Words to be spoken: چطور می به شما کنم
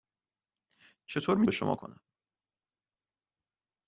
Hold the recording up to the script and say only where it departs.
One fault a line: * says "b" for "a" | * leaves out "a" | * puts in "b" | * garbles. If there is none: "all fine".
all fine